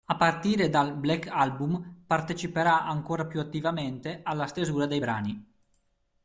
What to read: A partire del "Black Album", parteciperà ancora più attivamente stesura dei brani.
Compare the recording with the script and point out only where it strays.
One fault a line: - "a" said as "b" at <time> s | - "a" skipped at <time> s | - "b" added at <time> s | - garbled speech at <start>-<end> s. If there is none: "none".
- "del" said as "dal" at 0.7 s
- "alla" added at 4.2 s